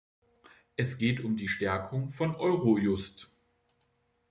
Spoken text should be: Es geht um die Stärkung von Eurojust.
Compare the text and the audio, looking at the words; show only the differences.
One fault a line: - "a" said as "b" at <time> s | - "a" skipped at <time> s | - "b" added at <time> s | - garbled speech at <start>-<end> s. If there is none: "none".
none